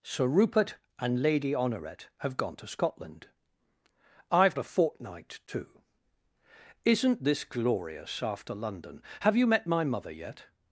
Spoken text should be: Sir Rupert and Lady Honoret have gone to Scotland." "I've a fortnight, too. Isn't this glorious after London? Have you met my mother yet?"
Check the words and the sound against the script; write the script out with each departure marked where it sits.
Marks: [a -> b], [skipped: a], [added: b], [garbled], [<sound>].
Sir Rupert and Lady Honoret have gone to Scotland." "I've a fortnight, too. Isn't this glorious after London? Have you met my mother yet?"